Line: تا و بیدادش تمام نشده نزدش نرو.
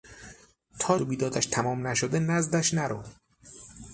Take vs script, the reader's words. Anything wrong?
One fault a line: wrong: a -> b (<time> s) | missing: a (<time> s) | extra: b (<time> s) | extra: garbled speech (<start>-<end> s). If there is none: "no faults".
no faults